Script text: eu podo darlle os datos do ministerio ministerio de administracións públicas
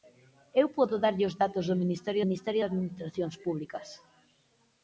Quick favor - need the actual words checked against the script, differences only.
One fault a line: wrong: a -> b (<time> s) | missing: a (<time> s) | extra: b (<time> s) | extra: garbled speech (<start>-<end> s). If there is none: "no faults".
no faults